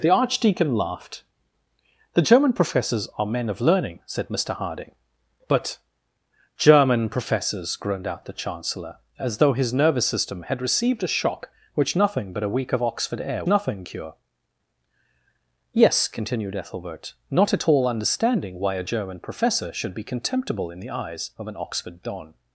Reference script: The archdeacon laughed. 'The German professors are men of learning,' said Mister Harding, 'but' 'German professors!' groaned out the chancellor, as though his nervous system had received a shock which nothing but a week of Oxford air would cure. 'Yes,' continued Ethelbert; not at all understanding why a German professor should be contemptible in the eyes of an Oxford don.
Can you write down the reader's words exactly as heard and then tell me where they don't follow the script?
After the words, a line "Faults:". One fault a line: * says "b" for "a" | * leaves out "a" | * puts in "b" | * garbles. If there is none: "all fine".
The archdeacon laughed. 'The German professors are men of learning,' said Mister Harding, 'but' 'German professors!' groaned out the chancellor, as though his nervous system had received a shock which nothing but a week of Oxford air nothing cure. 'Yes,' continued Ethelbert; not at all understanding why a German professor should be contemptible in the eyes of an Oxford don.
Faults:
* says "nothing" for "would"